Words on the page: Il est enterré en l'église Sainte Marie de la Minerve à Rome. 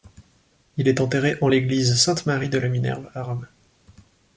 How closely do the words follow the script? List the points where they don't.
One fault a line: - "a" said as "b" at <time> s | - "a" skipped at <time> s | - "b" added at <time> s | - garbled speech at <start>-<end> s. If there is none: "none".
none